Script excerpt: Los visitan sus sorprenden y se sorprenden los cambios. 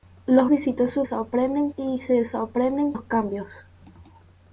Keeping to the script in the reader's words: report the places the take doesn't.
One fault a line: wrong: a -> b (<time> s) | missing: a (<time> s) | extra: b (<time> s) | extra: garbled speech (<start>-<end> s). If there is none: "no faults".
no faults